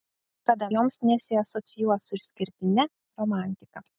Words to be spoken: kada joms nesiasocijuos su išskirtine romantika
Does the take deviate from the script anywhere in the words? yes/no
no